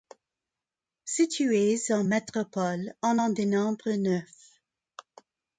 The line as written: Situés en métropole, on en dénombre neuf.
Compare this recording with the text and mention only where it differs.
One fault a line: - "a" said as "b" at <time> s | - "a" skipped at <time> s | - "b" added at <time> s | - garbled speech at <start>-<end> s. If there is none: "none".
none